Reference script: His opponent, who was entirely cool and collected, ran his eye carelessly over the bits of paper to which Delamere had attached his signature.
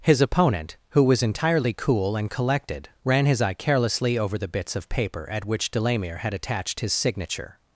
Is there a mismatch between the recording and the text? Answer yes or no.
yes